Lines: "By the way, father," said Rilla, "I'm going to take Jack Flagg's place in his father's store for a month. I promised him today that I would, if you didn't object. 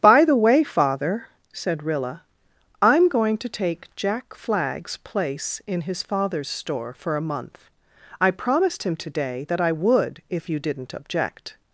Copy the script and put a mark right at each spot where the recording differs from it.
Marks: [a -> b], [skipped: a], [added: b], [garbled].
"By the way, father," said Rilla, "I'm going to take Jack Flagg's place in his father's store for a month. I promised him today that I would, if you didn't object.